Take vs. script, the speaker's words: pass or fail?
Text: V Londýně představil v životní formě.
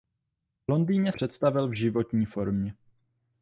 pass